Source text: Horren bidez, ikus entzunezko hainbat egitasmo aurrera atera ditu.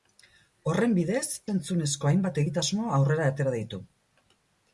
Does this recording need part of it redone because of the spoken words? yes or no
yes